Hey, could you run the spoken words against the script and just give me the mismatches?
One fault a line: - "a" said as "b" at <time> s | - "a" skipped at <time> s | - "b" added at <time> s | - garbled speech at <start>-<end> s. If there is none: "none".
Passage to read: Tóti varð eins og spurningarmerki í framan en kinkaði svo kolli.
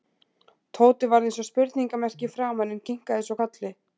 none